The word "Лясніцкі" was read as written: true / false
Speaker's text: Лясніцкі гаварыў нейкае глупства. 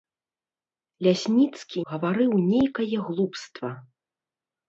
true